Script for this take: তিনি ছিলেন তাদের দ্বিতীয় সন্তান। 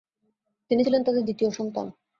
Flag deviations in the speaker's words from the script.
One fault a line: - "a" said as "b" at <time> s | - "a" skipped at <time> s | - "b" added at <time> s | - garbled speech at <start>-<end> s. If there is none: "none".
none